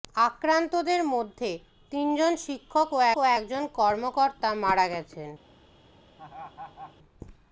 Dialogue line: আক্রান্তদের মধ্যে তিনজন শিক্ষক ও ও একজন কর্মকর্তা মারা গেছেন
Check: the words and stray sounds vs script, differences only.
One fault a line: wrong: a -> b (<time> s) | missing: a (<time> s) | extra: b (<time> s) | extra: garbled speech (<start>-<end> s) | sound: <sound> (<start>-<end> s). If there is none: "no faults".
sound: laugh (6.2-7.0 s)